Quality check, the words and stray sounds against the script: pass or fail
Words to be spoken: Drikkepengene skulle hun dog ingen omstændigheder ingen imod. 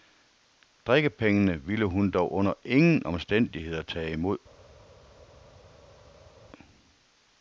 fail